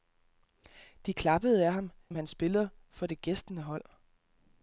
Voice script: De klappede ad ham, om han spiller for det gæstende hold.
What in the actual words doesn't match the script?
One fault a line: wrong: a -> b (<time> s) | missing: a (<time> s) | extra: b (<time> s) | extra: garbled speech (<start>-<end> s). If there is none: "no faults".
no faults